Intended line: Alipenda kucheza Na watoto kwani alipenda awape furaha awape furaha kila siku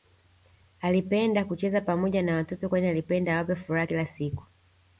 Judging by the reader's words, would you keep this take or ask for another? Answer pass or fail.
fail